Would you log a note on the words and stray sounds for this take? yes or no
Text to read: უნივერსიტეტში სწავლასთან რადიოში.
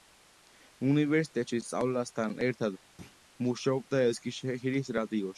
yes